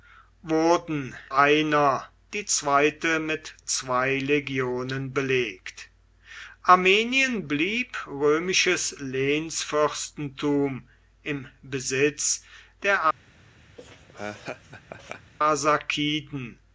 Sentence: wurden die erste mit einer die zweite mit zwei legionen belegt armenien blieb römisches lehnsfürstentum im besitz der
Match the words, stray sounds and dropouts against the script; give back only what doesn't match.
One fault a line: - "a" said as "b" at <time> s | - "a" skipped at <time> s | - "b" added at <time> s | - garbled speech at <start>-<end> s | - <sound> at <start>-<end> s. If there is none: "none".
- "die erste mit" skipped at 1.1 s
- laugh at 13.8-15.3 s